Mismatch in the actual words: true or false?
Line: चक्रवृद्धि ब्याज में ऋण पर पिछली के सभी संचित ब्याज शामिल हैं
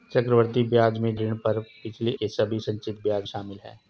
false